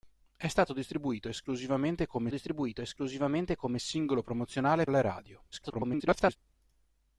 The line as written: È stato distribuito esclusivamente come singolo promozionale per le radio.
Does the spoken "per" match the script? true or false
false